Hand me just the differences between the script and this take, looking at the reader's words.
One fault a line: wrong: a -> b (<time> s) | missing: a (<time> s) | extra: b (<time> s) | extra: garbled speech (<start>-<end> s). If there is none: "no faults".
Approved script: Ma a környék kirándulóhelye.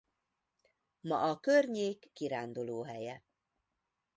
no faults